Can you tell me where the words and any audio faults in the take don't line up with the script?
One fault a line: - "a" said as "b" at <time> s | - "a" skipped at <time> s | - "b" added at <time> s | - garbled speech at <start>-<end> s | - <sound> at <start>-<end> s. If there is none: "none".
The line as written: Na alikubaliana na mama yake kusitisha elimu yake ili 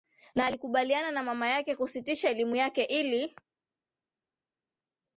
none